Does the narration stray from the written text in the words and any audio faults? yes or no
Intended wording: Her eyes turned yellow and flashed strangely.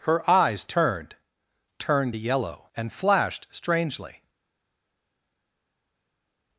yes